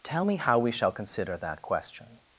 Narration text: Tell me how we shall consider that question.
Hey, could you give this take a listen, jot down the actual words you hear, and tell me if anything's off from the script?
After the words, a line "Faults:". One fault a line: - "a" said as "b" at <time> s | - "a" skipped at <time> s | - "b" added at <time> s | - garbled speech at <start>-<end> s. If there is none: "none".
Tell me how we shall consider that question.
Faults:
none